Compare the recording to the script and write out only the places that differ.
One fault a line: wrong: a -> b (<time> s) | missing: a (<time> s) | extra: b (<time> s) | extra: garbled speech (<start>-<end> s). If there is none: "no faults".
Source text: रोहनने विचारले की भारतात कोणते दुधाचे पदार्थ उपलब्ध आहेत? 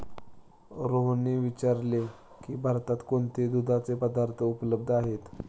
no faults